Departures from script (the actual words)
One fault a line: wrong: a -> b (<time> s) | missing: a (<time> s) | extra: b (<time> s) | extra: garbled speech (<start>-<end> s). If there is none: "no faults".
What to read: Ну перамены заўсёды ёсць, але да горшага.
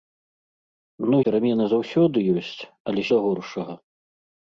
no faults